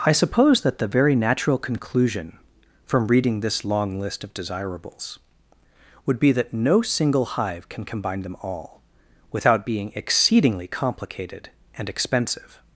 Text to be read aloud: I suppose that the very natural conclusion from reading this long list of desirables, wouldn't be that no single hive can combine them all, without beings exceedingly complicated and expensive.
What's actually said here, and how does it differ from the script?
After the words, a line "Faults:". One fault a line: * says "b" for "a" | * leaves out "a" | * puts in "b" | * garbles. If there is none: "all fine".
I suppose that the very natural conclusion from reading this long list of desirables, would be that no single hive can combine them all, without being exceedingly complicated and expensive.
Faults:
* says "would" for "wouldn't"
* says "being" for "beings"